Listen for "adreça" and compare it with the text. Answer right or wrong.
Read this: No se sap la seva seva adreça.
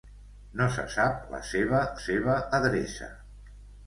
right